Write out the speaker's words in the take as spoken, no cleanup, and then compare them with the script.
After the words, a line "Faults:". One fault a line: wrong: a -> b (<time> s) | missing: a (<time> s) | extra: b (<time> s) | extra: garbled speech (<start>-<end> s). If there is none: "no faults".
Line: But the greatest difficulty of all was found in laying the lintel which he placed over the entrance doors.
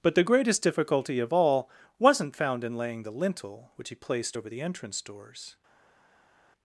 But the greatest difficulty of all wasn't found in laying the lintel which he placed over the entrance doors.
Faults:
wrong: was -> wasn't (2.0 s)